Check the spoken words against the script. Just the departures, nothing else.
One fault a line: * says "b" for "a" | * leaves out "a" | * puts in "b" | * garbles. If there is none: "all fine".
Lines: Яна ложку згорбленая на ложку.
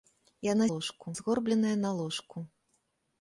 all fine